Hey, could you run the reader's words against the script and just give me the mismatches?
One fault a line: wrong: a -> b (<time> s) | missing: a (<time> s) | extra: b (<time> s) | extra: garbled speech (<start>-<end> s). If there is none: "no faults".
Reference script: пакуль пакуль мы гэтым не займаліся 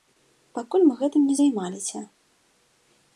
missing: пакуль (0.8 s)